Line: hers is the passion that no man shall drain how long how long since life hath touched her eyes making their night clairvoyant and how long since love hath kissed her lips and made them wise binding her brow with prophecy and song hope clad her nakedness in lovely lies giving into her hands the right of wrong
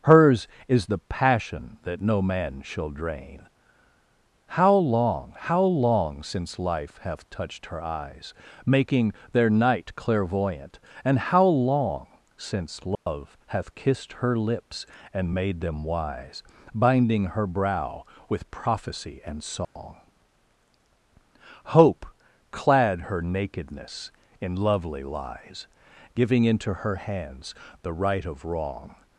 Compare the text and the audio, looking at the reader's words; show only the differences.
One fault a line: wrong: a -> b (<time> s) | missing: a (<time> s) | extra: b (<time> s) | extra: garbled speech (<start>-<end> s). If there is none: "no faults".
no faults